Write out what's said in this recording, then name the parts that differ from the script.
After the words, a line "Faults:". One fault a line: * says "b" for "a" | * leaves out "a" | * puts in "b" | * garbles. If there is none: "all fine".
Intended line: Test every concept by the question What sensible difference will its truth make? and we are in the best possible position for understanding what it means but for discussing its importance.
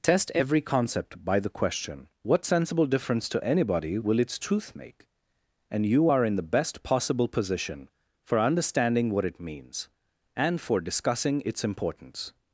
Test every concept by the question What sensible difference to anybody will its truth make? and you are in the best possible position for understanding what it means and for discussing its importance.
Faults:
* puts in "to anybody"
* says "you" for "we"
* says "and" for "but"